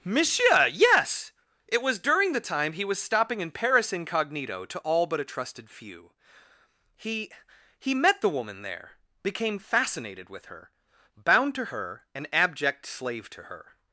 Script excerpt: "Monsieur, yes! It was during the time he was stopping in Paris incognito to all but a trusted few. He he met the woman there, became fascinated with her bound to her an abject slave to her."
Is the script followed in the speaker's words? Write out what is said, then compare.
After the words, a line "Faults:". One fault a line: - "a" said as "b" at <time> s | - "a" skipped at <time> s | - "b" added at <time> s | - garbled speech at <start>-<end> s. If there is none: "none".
"Monsieur, yes! It was during the time he was stopping in Paris incognito to all but a trusted few. He he met the woman there, became fascinated with her bound to her an abject slave to her."
Faults:
none